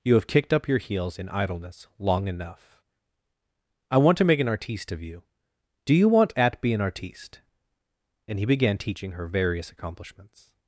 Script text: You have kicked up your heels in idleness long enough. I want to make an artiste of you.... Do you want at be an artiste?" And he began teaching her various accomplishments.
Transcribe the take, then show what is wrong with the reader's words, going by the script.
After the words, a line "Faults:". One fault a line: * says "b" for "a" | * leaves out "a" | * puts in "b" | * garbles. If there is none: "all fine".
You have kicked up your heels in idleness long enough. I want to make an artiste of you.... Do you want at be an artiste?" And he began teaching her various accomplishments.
Faults:
all fine